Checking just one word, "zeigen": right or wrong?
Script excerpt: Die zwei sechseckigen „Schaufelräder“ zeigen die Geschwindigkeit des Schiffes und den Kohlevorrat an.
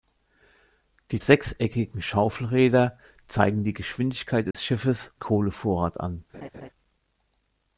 right